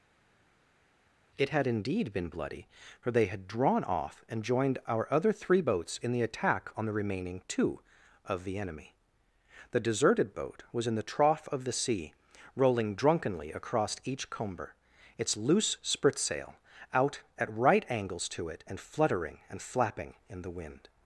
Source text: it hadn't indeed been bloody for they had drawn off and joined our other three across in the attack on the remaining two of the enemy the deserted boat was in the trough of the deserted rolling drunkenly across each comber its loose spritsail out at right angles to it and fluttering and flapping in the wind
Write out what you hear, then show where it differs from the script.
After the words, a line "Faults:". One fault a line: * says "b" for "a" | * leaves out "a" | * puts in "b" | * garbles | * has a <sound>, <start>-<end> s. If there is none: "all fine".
it had indeed been bloody for they had drawn off and joined our other three boats in the attack on the remaining two of the enemy the deserted boat was in the trough of the sea rolling drunkenly across each comber its loose spritsail out at right angles to it and fluttering and flapping in the wind
Faults:
* says "had" for "hadn't"
* says "boats" for "across"
* says "sea" for "deserted"